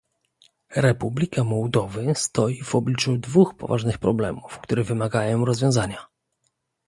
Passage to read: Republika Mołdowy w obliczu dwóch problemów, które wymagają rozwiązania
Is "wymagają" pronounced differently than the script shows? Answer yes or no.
no